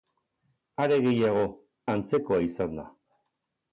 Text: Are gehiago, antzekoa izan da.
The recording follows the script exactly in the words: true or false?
true